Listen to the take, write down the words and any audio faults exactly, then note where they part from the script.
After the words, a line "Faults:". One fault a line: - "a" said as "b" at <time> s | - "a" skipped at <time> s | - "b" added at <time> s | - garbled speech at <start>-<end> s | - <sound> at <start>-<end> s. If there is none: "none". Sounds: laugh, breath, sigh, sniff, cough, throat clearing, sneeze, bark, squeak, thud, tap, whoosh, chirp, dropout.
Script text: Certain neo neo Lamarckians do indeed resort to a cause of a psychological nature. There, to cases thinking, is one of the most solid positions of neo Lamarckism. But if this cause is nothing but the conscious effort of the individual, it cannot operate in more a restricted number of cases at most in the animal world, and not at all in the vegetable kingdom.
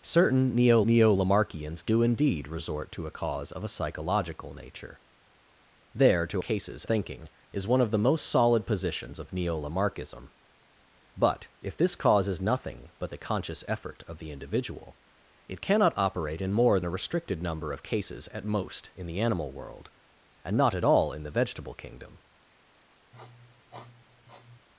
Certain neo neo Lamarckians do indeed resort to a cause of a psychological nature. There, to cases thinking, is one of the most solid positions of neo Lamarckism. But if this cause is nothing but the conscious effort of the individual, it cannot operate in more a restricted number of cases at most in the animal world, and not at all in the vegetable kingdom.
Faults:
- sniff at 23.1-24.7 s